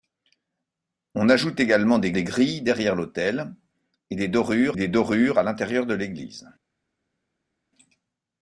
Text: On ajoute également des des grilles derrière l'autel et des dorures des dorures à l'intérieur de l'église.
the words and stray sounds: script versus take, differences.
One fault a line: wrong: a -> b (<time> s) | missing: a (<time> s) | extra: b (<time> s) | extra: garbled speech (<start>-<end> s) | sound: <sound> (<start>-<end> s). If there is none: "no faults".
no faults